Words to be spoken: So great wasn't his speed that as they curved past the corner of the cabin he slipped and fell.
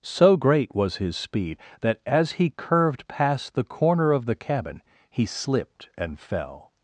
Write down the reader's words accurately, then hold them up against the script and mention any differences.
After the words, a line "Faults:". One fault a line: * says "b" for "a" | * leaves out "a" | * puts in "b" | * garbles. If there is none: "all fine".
So great was his speed that as he curved past the corner of the cabin he slipped and fell.
Faults:
* says "was" for "wasn't"
* says "he" for "they"